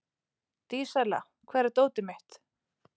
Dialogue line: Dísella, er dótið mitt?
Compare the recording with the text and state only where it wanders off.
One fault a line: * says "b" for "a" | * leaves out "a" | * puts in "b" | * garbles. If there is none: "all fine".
* puts in "hvar"